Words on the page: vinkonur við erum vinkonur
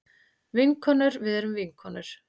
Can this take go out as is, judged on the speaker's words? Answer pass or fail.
pass